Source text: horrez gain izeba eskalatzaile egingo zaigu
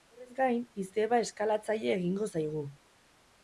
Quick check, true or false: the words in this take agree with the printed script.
true